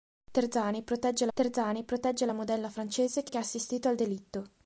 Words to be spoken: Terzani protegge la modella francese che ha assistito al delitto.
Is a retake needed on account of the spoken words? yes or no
yes